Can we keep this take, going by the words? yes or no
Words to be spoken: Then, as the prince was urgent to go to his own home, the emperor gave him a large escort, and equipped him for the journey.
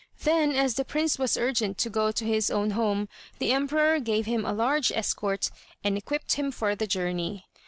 yes